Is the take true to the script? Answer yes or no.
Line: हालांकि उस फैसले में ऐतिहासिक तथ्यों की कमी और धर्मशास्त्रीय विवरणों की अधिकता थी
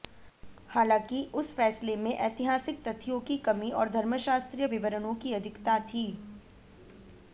yes